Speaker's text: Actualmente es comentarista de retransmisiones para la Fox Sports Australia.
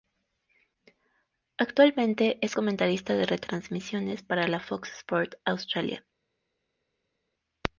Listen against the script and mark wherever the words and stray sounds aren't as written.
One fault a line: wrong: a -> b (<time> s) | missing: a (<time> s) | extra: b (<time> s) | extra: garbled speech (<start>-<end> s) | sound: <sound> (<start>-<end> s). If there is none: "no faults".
no faults